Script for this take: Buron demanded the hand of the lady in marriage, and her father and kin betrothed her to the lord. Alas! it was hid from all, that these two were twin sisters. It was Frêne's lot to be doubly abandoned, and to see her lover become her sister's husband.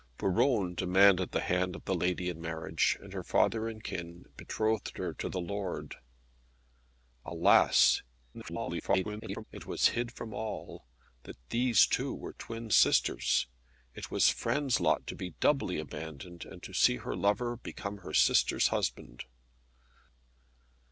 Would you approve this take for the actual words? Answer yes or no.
no